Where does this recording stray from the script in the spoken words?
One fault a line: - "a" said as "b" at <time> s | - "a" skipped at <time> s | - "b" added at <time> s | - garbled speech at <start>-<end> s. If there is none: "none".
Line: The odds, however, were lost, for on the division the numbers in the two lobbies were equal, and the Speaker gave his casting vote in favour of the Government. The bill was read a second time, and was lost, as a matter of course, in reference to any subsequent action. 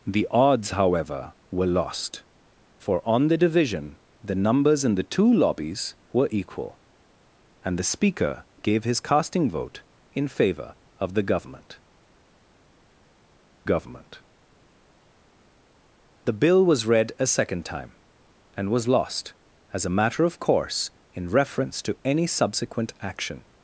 - "Government" added at 13.6 s